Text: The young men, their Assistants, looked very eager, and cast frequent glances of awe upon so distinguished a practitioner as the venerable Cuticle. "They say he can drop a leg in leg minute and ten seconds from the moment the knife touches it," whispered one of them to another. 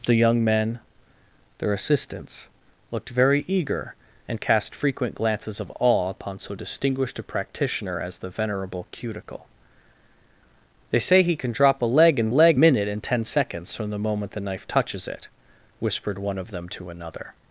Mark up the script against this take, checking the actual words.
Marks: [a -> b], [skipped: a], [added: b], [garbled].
The young men, their Assistants, looked very eager, and cast frequent glances of awe upon so distinguished a practitioner as the venerable Cuticle. "They say he can drop a leg in leg minute and ten seconds from the moment the knife touches it," whispered one of them to another.